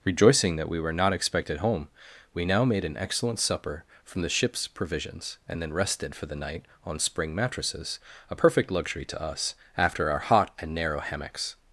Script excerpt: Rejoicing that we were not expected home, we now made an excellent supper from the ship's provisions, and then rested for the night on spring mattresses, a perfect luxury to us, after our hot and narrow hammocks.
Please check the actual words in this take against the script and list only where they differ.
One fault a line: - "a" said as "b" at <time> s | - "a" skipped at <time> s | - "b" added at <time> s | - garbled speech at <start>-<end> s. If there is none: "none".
none